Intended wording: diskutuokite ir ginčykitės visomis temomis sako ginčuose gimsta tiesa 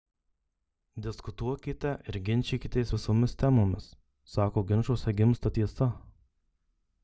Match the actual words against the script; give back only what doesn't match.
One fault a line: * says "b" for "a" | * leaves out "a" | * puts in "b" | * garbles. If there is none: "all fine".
all fine